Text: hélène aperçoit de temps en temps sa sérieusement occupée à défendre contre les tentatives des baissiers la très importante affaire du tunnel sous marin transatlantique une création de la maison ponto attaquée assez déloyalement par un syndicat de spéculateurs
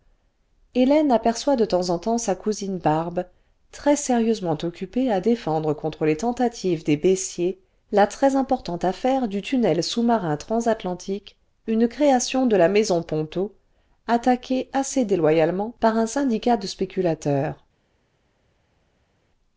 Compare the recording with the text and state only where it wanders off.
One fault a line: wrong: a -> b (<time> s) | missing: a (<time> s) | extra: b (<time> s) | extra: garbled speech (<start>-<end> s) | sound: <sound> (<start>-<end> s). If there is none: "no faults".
extra: cousine barbe très (2.3 s)